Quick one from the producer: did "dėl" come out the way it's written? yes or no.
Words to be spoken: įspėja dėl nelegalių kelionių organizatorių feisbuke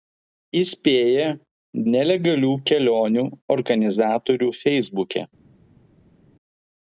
no